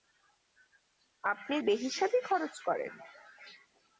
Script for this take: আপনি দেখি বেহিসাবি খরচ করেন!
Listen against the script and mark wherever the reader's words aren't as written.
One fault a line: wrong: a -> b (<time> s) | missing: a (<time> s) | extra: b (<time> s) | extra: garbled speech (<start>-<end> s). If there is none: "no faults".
missing: দেখি (1.6 s)